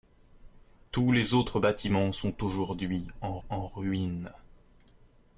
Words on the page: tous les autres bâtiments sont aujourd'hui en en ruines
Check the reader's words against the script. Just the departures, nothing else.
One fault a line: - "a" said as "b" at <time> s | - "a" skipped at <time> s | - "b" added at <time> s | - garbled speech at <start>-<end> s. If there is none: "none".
none